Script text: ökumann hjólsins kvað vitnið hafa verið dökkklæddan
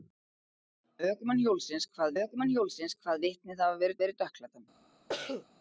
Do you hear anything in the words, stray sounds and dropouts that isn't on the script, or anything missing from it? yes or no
yes